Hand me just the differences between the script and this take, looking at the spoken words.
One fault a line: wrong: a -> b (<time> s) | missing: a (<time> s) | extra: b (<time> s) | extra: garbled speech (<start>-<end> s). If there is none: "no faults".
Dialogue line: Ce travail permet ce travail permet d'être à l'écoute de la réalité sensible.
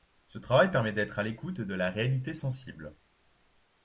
missing: ce travail permet (0.9 s)